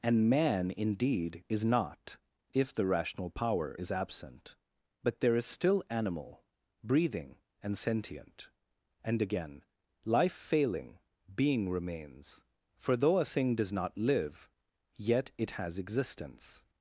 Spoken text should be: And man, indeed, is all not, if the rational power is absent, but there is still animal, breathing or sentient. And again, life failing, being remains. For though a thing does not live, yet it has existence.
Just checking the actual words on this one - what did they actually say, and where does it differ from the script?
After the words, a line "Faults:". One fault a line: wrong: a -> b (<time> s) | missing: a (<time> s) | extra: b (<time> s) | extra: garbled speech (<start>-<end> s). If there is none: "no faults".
And man, indeed, is not, if the rational power is absent, but there is still animal, breathing and sentient. And again, life failing, being remains. For though a thing does not live, yet it has existence.
Faults:
missing: all (1.7 s)
wrong: or -> and (7.6 s)